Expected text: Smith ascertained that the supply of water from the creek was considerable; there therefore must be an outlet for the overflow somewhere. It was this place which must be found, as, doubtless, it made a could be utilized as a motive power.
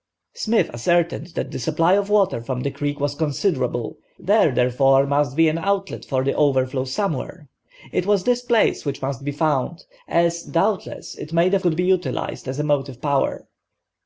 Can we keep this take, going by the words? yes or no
yes